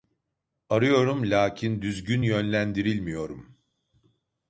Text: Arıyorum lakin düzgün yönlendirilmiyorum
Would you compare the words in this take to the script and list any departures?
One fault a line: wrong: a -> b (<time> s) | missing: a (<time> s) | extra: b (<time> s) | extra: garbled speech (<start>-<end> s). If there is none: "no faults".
no faults